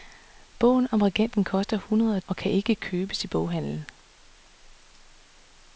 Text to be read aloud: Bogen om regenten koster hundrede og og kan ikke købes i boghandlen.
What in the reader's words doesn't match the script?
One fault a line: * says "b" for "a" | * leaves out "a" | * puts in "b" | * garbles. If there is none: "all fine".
all fine